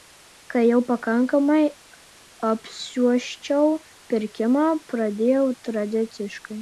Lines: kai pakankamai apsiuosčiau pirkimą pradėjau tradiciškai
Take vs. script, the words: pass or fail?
fail